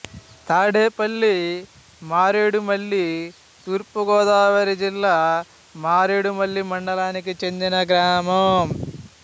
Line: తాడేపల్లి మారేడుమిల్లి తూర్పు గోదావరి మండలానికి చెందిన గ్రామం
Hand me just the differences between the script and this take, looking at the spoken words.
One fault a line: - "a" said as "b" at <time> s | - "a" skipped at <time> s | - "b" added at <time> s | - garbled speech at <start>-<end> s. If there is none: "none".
- "జిల్లా మారేడుమిల్లి" added at 4.8 s